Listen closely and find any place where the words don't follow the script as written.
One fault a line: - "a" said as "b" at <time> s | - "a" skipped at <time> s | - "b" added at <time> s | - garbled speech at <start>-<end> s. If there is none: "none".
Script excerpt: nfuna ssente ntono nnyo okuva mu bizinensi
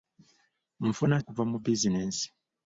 - "ssente ntono nnyo" skipped at 1.2 s